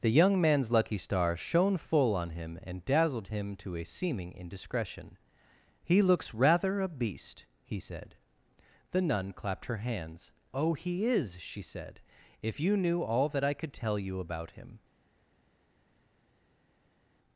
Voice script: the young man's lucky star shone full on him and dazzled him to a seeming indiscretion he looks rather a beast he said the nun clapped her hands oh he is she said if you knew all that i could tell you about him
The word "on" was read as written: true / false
true